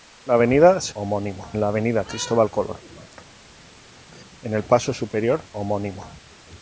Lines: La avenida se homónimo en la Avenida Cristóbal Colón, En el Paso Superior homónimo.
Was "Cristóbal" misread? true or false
false